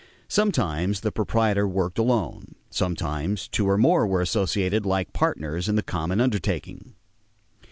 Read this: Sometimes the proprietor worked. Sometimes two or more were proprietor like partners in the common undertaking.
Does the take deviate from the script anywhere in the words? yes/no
yes